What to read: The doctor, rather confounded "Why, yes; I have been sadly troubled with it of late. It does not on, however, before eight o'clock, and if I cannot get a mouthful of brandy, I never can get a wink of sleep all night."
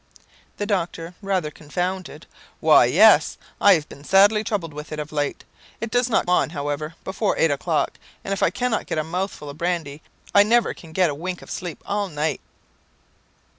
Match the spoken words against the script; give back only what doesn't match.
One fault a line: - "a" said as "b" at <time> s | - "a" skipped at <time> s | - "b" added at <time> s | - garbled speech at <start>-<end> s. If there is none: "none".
none